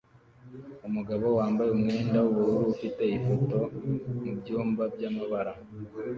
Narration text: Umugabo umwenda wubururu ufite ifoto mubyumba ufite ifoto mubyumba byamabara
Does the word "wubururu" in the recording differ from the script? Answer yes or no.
no